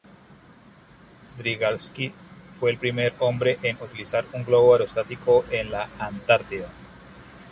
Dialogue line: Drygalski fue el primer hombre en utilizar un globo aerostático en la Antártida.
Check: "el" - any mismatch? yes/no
no